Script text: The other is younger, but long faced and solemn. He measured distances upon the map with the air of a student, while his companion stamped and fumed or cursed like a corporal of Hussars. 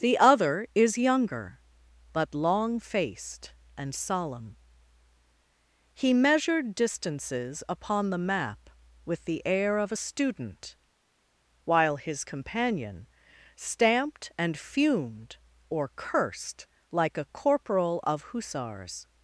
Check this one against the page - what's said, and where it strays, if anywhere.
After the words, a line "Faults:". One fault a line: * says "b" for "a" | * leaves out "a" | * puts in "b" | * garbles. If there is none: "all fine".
The other is younger, but long faced and solemn. He measured distances upon the map with the air of a student, while his companion stamped and fumed or cursed like a corporal of Hussars.
Faults:
all fine